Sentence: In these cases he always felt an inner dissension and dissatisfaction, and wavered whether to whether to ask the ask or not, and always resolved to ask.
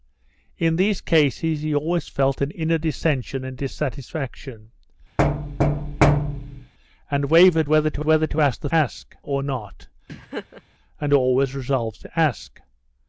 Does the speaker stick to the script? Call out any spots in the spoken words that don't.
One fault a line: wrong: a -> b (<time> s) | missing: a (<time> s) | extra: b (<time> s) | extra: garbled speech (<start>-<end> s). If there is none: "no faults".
no faults